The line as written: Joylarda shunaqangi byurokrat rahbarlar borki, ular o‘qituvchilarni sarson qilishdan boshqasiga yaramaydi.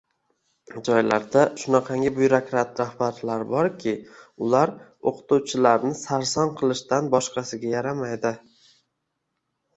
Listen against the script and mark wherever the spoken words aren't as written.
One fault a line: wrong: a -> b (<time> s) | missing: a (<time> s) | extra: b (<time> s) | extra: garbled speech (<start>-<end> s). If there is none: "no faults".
no faults